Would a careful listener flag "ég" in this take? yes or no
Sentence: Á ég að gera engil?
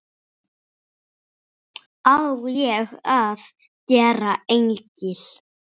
no